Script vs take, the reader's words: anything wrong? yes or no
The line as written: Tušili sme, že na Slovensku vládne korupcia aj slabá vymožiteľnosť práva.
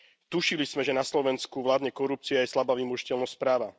no